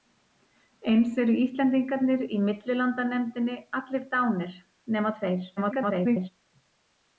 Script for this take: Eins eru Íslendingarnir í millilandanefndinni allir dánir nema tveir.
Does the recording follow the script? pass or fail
fail